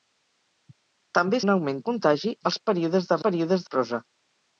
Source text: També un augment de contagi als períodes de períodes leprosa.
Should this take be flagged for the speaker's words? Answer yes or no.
no